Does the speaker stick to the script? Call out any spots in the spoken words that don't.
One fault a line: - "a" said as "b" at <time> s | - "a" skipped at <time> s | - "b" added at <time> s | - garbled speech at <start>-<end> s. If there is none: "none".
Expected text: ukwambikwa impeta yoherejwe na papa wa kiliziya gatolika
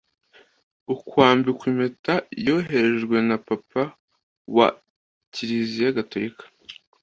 none